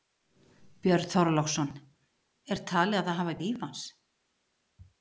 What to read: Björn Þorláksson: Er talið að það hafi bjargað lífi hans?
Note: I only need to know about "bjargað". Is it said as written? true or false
false